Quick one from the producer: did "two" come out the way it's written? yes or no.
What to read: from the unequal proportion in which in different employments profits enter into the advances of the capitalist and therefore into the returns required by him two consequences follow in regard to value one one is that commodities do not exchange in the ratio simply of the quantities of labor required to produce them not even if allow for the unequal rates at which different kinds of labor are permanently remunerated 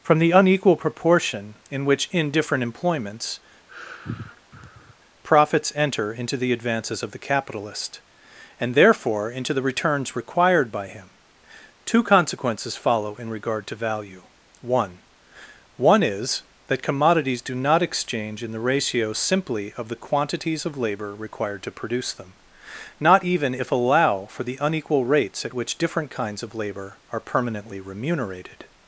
yes